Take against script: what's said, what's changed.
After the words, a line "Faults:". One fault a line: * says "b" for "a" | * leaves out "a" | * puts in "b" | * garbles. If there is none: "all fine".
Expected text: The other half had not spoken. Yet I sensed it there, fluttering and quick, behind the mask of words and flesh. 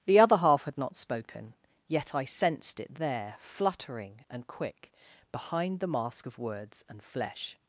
The other half had not spoken. Yet I sensed it there, fluttering and quick, behind the mask of words and flesh.
Faults:
all fine